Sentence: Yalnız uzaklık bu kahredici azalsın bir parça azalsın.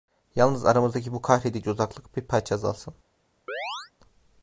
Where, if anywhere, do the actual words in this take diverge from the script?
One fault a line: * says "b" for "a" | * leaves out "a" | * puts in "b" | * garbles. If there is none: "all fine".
* says "aramızdaki" for "uzaklık"
* says "uzaklık" for "azalsın"